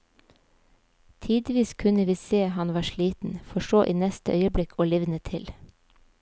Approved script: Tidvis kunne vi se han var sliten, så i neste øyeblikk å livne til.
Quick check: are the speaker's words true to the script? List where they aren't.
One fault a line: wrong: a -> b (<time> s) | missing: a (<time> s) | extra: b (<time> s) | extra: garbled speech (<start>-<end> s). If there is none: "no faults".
extra: for (3.4 s)